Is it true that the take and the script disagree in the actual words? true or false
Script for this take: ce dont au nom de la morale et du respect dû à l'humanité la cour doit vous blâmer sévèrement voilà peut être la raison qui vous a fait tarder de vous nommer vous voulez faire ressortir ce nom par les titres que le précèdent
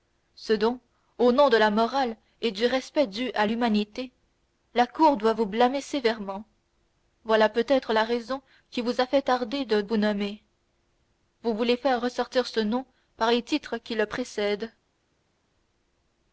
true